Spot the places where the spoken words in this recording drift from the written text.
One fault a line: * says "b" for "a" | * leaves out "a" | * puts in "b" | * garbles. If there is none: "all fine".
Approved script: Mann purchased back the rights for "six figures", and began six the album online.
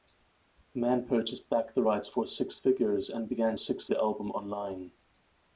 all fine